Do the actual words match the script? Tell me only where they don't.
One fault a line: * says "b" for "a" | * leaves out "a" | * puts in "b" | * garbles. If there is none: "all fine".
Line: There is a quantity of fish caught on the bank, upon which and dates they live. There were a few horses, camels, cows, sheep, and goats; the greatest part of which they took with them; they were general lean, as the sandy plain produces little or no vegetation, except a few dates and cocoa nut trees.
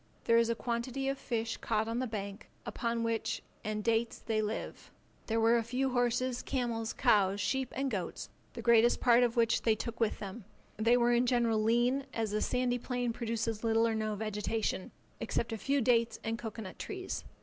* puts in "in"